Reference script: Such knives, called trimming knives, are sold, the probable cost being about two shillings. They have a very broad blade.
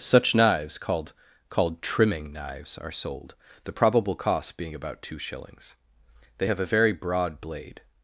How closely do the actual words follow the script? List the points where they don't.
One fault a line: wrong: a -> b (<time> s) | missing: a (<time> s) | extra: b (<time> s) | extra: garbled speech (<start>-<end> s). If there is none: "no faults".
extra: called (1.5 s)